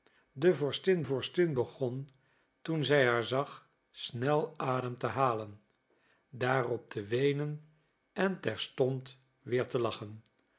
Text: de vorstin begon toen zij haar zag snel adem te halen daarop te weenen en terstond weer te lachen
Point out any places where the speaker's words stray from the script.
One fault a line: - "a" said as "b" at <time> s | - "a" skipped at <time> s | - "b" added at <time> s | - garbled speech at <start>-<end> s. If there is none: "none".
- "vorstin" added at 1.0 s